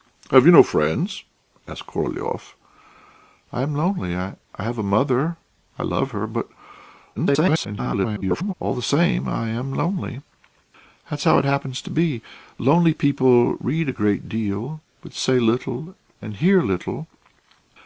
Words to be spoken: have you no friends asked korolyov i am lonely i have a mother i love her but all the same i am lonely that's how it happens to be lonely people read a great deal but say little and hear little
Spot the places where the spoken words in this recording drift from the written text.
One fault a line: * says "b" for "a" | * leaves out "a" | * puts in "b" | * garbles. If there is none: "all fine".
* garbles